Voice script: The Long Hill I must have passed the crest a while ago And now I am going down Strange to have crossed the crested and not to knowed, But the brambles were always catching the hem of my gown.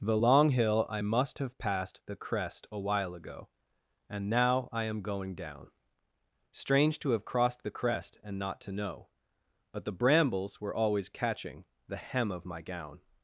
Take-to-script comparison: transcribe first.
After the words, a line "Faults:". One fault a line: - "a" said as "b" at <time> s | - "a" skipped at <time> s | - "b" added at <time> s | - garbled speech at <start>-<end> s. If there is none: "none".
The Long Hill I must have passed the crest a while ago And now I am going down Strange to have crossed the crest and not to know, But the brambles were always catching the hem of my gown.
Faults:
- "crested" said as "crest" at 7.7 s
- "knowed" said as "know" at 8.7 s